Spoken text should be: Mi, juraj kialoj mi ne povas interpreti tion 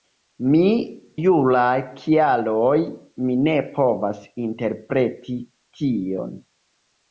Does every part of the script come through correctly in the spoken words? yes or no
yes